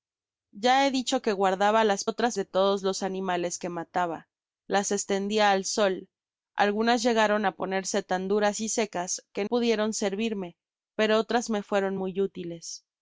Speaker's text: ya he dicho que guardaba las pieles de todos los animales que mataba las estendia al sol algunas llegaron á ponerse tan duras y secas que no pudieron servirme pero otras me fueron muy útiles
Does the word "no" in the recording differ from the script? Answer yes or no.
yes